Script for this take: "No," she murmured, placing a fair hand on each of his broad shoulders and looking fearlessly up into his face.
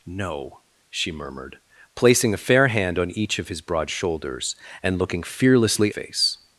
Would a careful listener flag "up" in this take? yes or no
yes